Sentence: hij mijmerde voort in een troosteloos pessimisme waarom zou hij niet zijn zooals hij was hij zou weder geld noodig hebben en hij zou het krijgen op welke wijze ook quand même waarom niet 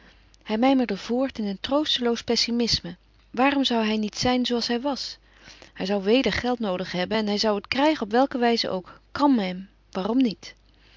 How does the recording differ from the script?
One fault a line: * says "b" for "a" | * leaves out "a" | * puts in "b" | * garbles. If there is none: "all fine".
all fine